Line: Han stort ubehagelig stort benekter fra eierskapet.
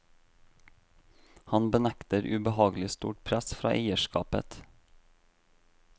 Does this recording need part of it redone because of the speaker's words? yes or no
yes